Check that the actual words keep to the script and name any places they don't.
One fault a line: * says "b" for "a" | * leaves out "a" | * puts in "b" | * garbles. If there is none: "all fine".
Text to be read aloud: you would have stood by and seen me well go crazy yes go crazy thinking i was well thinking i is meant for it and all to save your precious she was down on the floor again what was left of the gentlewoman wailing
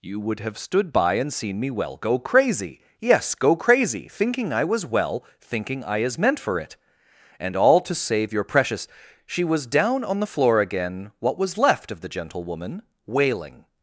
all fine